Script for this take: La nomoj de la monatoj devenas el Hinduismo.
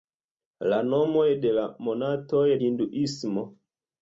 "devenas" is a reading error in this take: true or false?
true